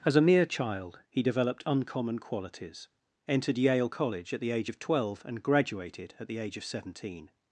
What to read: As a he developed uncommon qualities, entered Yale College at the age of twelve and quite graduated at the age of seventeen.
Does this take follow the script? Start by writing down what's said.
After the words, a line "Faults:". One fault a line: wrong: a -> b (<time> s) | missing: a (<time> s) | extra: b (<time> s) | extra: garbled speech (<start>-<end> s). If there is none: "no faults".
As a mere child, he developed uncommon qualities, entered Yale College at the age of twelve and graduated at the age of seventeen.
Faults:
extra: mere child (0.2 s)
missing: quite (5.4 s)